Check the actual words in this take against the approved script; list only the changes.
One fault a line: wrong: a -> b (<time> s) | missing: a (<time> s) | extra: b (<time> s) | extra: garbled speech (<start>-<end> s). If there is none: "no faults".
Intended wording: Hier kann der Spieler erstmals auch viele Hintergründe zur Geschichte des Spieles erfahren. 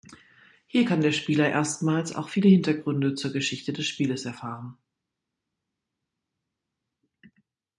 no faults